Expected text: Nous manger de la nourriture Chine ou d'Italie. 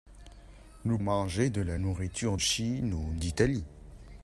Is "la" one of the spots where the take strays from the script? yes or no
no